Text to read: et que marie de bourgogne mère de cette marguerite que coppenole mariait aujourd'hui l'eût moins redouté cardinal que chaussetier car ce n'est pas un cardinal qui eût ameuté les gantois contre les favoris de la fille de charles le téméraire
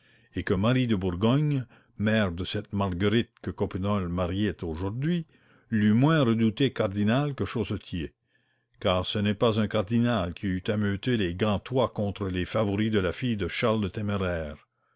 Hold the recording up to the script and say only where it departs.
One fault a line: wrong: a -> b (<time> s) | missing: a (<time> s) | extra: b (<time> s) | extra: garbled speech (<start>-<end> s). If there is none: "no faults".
no faults